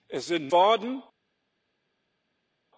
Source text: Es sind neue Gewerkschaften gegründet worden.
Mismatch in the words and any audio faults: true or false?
true